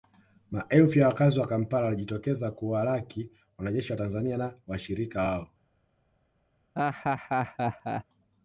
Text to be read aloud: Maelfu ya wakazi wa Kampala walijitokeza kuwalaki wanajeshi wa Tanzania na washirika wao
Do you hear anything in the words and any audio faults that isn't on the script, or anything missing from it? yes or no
yes